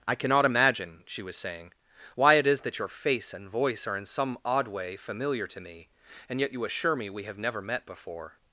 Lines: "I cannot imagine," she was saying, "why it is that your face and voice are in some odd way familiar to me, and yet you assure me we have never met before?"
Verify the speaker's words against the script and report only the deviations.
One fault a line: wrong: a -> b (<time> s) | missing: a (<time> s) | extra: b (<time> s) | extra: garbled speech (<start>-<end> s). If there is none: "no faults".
no faults